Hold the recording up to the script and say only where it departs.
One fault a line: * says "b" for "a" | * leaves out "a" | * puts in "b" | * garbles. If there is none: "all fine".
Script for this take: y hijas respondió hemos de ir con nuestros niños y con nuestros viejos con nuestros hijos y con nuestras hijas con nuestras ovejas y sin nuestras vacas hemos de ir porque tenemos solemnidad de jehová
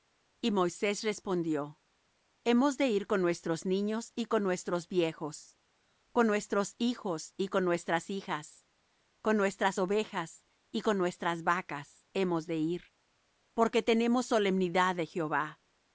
* says "moisés" for "hijas"
* says "con" for "sin"